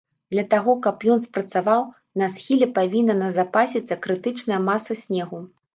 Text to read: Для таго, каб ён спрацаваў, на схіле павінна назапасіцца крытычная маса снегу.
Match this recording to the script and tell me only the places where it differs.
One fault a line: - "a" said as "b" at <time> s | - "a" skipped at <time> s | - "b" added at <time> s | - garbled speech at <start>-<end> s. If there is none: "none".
none